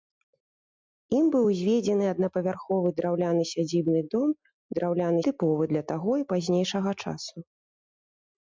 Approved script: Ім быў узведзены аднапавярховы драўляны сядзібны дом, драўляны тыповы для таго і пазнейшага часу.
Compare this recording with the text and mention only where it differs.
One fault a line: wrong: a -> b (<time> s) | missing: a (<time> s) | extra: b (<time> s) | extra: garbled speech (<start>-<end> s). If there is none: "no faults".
no faults